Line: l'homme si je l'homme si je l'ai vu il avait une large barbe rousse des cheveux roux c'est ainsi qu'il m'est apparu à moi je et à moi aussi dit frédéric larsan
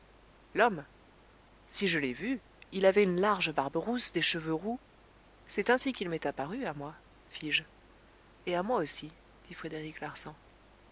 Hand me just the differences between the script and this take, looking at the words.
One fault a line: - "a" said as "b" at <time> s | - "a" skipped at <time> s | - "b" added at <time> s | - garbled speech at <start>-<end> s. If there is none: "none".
- "l'homme si je" skipped at 2.0 s
- "fis" added at 7.3 s